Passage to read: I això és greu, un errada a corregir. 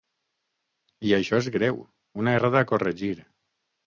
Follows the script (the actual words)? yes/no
no